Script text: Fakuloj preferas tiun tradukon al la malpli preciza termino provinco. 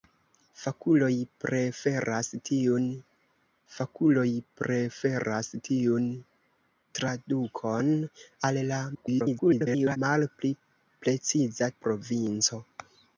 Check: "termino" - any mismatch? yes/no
yes